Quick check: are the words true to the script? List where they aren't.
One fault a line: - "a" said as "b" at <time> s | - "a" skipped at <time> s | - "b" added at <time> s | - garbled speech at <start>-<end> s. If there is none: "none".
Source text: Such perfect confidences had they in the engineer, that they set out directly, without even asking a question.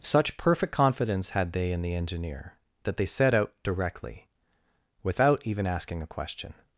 - "confidences" said as "confidence" at 0.7 s